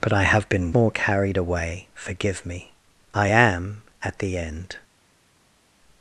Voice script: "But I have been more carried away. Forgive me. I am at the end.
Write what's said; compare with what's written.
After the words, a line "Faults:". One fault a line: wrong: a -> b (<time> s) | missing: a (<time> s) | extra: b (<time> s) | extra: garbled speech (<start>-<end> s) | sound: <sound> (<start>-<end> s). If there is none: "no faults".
"But I have been more carried away. Forgive me. I am at the end.
Faults:
no faults